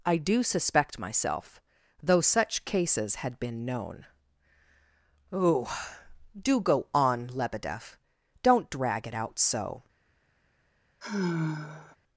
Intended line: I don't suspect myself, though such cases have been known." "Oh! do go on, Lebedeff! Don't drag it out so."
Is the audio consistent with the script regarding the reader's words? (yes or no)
no